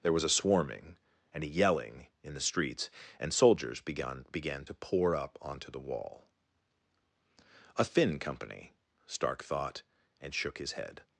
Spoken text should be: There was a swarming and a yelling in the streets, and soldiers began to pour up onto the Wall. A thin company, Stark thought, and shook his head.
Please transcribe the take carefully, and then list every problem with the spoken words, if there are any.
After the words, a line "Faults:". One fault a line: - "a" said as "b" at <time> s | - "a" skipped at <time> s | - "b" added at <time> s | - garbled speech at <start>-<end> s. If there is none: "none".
There was a swarming and a yelling in the streets, and soldiers began began to pour up onto the Wall. A thin company, Stark thought, and shook his head.
Faults:
- "began" added at 4.3 s